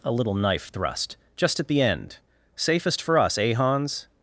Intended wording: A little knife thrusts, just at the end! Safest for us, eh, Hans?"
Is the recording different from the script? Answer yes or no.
yes